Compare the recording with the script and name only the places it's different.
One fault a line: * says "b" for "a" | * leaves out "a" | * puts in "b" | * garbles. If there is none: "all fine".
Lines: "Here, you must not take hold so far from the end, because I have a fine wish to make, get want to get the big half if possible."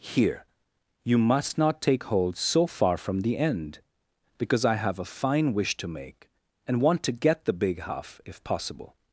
* says "and" for "get"